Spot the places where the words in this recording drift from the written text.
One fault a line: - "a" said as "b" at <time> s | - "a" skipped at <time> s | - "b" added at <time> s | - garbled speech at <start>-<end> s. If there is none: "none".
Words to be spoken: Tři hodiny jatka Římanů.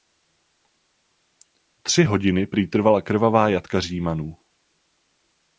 - "prý trvala krvavá" added at 2.5 s